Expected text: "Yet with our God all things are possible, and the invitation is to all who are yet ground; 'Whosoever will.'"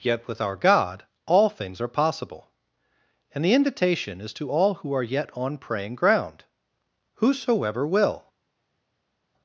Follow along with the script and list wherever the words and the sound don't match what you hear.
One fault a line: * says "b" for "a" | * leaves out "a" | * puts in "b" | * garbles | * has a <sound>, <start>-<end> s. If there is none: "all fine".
* puts in "on praying"